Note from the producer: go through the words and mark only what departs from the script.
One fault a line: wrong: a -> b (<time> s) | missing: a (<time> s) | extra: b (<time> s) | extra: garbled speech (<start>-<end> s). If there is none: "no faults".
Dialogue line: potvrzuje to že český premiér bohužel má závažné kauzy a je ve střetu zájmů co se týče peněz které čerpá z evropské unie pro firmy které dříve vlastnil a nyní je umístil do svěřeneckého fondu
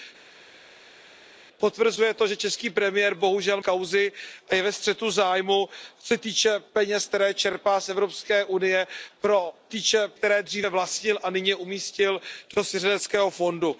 missing: má závažné (3.6 s)
wrong: firmy -> týče (9.7 s)